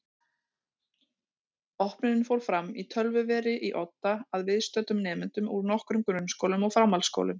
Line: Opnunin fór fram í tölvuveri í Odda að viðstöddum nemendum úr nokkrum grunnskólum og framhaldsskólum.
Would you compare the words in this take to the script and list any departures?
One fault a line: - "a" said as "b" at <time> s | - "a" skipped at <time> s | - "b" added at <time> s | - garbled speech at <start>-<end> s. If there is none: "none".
none